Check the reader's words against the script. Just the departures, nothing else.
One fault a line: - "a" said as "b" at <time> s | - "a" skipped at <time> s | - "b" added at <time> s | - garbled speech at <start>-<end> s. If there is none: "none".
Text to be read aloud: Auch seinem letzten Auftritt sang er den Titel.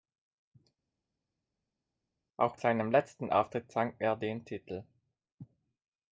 none